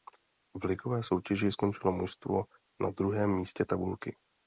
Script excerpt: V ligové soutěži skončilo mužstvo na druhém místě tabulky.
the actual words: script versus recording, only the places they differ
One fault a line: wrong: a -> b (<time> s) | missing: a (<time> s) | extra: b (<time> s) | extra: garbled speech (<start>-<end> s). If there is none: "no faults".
no faults